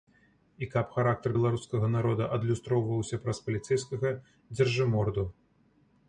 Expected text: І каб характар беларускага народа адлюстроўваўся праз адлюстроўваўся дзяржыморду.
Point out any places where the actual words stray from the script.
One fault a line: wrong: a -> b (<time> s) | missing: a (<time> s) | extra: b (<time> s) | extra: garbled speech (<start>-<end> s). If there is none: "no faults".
wrong: адлюстроўваўся -> паліцэйскага (3.5 s)